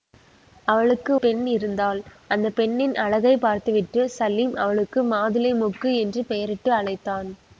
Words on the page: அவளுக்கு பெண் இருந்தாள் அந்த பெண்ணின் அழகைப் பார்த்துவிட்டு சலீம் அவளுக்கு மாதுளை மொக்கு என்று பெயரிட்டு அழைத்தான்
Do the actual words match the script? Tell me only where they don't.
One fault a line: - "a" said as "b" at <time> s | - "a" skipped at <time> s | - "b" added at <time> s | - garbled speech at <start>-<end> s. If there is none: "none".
none